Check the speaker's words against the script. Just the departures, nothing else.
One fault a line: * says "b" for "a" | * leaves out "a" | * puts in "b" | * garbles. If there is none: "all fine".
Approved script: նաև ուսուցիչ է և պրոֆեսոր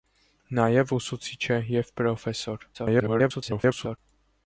* garbles